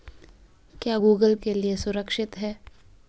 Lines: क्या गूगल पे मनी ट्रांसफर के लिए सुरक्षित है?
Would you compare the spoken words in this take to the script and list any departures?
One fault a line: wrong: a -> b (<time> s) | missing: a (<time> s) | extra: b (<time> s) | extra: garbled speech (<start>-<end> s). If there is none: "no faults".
missing: पे मनी ट्रांसफर (1.3 s)